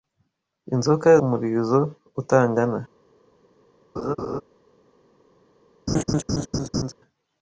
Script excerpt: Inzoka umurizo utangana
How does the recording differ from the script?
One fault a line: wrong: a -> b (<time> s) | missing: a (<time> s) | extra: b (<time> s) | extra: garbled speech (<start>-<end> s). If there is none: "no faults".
no faults